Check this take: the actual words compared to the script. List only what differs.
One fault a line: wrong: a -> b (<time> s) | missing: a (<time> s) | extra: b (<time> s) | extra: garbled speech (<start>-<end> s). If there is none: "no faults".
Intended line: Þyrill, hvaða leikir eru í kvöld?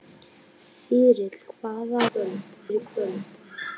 wrong: leikir -> kvöld (2.1 s)